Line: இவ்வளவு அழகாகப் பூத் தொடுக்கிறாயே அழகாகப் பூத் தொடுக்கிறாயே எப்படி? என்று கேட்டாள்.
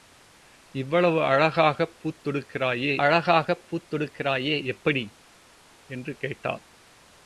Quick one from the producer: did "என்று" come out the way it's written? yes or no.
yes